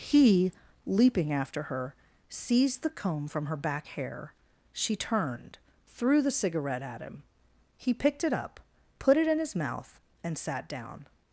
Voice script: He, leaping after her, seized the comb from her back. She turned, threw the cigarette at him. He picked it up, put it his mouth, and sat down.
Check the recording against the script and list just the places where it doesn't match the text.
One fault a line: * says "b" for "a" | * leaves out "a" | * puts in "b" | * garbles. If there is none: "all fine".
* puts in "hair"
* puts in "in"